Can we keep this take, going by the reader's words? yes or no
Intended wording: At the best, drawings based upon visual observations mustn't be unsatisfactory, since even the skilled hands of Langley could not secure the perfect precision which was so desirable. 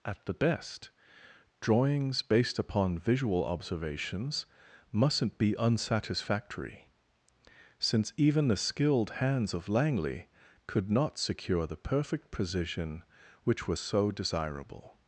yes